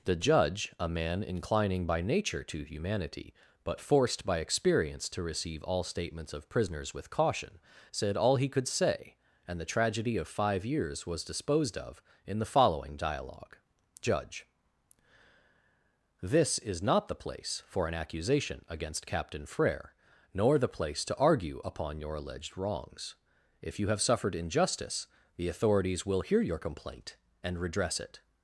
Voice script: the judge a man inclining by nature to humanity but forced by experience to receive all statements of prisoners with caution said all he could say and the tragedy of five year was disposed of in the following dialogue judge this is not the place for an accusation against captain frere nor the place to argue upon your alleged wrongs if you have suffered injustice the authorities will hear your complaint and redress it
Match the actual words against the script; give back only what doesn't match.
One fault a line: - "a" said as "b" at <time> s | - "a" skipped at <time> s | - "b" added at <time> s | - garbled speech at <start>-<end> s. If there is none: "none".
- "year" said as "years" at 10.7 s